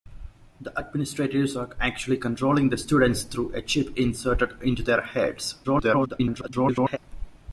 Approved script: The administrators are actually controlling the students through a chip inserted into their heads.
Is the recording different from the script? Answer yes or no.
yes